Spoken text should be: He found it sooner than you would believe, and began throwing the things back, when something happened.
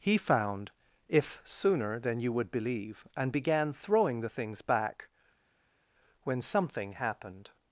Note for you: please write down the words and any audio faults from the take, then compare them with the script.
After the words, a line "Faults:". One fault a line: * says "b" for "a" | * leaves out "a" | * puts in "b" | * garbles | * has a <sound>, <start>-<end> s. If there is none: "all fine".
He found if sooner than you would believe, and began throwing the things back, when something happened.
Faults:
* says "if" for "it"